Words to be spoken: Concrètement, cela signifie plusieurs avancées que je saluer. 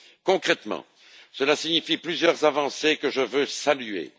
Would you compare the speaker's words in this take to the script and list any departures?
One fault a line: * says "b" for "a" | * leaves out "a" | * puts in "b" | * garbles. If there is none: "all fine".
* puts in "veux"